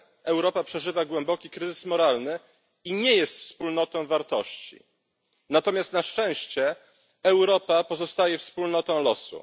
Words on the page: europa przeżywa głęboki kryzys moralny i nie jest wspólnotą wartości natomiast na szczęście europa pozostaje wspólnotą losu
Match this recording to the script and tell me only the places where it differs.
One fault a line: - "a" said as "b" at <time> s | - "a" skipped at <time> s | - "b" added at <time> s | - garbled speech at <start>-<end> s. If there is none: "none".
none